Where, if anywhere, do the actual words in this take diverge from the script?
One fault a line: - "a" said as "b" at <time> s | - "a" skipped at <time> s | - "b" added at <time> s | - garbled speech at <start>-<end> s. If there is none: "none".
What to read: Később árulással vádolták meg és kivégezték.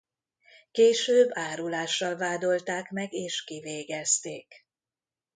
none